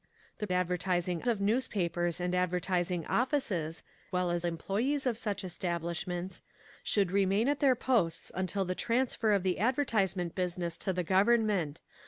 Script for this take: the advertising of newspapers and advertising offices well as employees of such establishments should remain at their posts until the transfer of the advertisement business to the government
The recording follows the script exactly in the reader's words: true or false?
true